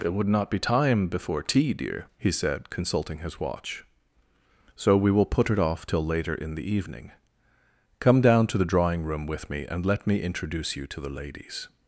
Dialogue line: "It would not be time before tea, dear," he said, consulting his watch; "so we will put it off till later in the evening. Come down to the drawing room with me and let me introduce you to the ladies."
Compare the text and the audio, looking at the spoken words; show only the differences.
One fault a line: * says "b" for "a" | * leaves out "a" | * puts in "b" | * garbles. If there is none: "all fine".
all fine